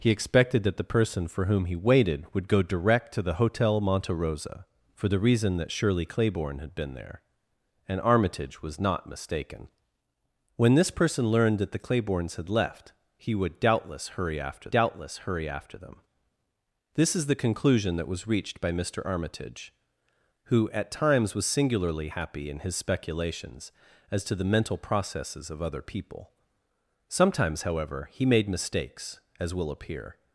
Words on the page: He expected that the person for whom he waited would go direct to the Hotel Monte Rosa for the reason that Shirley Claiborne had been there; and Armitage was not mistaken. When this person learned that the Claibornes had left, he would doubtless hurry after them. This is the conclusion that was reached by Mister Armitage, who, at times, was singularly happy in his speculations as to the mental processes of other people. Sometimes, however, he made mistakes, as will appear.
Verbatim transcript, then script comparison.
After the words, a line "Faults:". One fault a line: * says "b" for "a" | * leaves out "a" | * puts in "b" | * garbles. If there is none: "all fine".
He expected that the person for whom he waited would go direct to the Hotel Monte Rosa for the reason that Shirley Claiborne had been there; and Armitage was not mistaken. When this person learned that the Claibornes had left, he would doubtless hurry after doubtless hurry after them. This is the conclusion that was reached by Mister Armitage, who, at times, was singularly happy in his speculations as to the mental processes of other people. Sometimes, however, he made mistakes, as will appear.
Faults:
* puts in "doubtless hurry after"